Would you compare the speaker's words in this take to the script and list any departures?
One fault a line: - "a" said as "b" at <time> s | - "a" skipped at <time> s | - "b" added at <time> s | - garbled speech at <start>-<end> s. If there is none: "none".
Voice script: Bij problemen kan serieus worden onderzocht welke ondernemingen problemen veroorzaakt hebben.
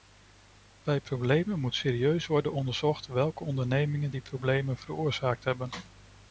- "kan" said as "moet" at 1.6 s
- "die" added at 4.1 s